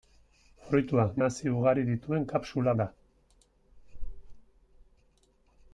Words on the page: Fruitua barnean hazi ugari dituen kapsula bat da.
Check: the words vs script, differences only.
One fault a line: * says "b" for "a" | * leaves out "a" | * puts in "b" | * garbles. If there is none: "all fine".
* leaves out "barnean"
* leaves out "bat"